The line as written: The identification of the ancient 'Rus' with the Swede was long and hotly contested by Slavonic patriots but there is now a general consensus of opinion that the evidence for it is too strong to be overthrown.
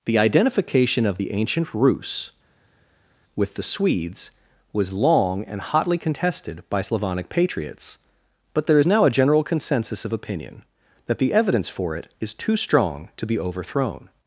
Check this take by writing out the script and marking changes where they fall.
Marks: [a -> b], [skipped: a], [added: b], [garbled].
The identification of the ancient 'Rus' with the [Swede -> Swedes] was long and hotly contested by Slavonic patriots but there is now a general consensus of opinion that the evidence for it is too strong to be overthrown.